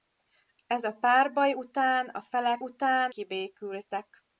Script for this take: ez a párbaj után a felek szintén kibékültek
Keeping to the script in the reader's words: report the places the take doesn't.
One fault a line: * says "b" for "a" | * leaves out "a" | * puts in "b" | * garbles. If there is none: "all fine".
* says "után" for "szintén"